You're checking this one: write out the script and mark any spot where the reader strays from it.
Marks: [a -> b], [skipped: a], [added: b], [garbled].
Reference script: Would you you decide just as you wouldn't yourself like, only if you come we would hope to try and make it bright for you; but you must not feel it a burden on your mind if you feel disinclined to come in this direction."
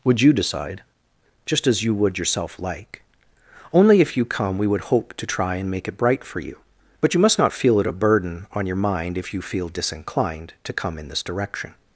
Would you [skipped: you] decide just as you [wouldn't -> would] yourself like, only if you come we would hope to try and make it bright for you; but you must not feel it a burden on your mind if you feel disinclined to come in this direction."